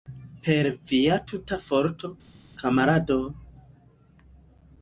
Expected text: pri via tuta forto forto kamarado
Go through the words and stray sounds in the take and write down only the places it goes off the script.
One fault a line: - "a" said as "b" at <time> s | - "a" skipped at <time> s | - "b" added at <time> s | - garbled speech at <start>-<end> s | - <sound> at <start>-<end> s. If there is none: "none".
- "pri" said as "per" at 0.5 s
- "forto" skipped at 2.1 s